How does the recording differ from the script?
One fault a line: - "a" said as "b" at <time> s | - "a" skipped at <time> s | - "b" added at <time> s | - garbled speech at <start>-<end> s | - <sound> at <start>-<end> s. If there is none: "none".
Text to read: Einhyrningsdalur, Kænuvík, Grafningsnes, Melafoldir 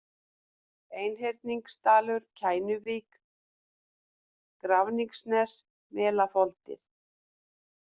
none